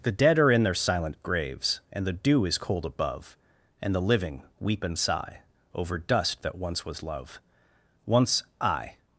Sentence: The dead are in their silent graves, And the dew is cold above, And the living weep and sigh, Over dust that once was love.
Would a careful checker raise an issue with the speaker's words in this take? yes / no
yes